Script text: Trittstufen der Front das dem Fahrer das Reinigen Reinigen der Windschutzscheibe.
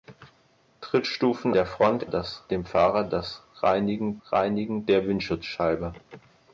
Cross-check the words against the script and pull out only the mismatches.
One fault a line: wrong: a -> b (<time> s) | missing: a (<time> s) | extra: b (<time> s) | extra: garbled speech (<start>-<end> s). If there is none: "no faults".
no faults